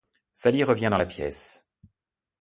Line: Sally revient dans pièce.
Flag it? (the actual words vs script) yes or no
yes